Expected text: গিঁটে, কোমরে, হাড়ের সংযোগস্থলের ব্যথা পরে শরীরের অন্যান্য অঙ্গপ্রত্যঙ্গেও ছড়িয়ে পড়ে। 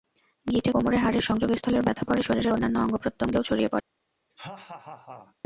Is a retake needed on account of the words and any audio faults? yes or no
yes